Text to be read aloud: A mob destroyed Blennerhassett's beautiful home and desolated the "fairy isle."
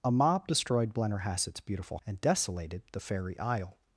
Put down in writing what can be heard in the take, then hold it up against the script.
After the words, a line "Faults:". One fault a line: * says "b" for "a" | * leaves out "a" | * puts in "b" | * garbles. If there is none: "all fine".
A mob destroyed Blennerhassett's beautiful and desolated the "fairy isle."
Faults:
* leaves out "home"